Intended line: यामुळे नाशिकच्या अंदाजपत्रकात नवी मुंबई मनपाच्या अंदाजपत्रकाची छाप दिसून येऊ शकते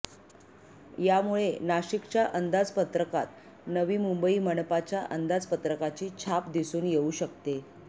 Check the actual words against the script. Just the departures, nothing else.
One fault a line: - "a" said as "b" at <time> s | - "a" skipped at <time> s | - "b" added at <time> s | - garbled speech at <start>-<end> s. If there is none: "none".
none